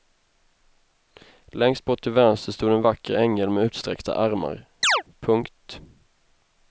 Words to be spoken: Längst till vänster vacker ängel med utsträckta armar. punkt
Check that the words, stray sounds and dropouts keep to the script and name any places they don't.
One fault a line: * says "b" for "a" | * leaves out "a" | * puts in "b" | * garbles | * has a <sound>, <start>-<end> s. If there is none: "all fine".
* puts in "bort"
* puts in "stod en"
* has a chirp, 4.8-5.0 s